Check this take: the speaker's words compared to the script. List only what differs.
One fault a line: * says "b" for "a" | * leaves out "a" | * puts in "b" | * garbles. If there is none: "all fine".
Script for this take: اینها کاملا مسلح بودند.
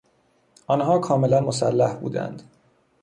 * says "آنها" for "اینها"